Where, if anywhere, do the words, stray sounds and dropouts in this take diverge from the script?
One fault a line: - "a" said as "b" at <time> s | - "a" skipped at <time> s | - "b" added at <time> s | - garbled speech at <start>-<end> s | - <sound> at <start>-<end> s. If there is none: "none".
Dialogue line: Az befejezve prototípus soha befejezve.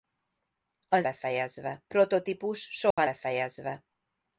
- dropout at 2.9-3.0 s